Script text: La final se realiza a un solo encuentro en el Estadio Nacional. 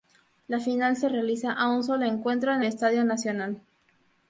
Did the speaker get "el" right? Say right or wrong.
wrong